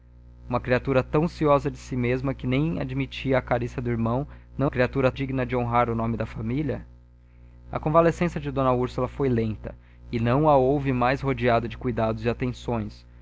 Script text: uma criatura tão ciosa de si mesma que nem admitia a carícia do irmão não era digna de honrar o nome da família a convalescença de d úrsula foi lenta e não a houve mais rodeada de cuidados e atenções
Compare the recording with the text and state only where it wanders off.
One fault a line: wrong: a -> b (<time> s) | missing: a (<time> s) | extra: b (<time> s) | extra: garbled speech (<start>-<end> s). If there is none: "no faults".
wrong: era -> criatura (4.7 s)